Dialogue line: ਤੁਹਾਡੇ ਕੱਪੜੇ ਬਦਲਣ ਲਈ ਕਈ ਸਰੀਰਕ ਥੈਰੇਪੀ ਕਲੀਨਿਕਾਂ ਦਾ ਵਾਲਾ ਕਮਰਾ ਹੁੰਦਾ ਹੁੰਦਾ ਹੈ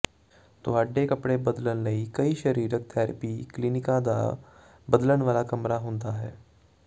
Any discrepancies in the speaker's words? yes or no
yes